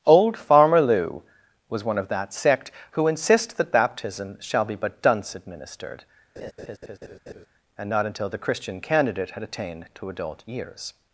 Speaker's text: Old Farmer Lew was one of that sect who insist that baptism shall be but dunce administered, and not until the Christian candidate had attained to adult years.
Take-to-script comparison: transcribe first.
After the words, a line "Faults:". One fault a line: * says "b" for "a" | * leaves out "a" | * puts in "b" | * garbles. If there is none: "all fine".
Old Farmer Lew was one of that sect who insist that baptism shall be but dunce administered, and not until the Christian candidate had attained to adult years.
Faults:
all fine